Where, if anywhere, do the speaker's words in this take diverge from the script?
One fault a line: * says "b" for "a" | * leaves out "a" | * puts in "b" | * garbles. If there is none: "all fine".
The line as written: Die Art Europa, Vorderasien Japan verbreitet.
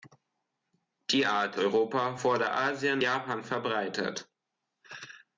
all fine